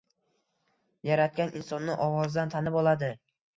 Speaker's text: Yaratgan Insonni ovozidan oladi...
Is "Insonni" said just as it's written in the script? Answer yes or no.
yes